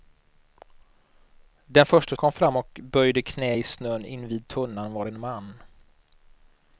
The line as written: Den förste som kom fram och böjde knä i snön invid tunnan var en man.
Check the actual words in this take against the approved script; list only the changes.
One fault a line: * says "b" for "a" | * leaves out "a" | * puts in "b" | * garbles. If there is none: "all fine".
* leaves out "som"